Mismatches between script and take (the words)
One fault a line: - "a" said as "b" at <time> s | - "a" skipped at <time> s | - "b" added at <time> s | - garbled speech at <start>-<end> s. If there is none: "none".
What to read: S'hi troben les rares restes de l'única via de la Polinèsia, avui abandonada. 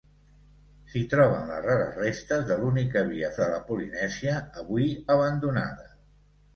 none